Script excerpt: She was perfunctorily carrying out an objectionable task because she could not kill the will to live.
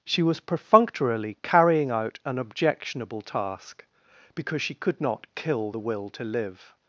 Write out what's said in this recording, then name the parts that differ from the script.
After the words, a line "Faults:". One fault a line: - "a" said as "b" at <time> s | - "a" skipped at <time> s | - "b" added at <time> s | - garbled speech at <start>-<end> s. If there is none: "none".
She was perfunctorily carrying out an objectionable task because she could not kill the will to live.
Faults:
none